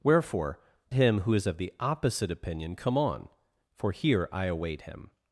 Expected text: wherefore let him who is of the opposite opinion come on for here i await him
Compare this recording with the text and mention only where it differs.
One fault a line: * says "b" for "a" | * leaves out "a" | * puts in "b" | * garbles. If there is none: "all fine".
* leaves out "let"